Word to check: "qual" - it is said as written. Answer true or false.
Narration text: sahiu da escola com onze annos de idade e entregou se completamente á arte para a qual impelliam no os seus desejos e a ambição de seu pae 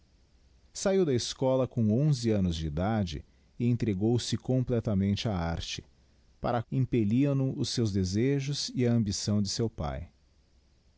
false